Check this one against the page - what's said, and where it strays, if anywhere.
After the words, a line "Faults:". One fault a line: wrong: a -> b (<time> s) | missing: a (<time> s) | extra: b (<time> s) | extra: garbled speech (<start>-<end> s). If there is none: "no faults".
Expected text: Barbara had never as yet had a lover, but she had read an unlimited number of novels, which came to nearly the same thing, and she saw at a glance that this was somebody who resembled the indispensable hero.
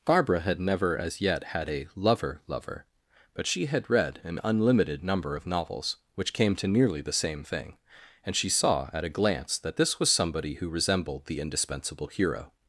Barbara had never as yet had a lover lover, but she had read an unlimited number of novels, which came to nearly the same thing, and she saw at a glance that this was somebody who resembled the indispensable hero.
Faults:
extra: lover (2.5 s)